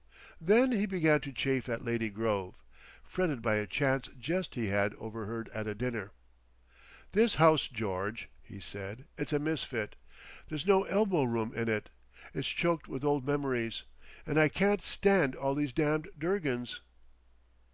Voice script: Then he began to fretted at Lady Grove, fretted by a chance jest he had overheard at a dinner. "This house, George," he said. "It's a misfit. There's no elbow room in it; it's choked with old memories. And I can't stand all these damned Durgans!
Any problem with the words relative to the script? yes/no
yes